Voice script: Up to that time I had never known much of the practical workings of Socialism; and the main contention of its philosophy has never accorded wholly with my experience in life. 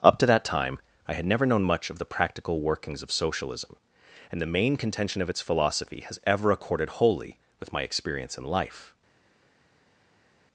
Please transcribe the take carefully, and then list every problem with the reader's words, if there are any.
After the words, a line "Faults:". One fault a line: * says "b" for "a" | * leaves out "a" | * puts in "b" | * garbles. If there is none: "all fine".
Up to that time I had never known much of the practical workings of Socialism; and the main contention of its philosophy has ever accorded wholly with my experience in life.
Faults:
* says "ever" for "never"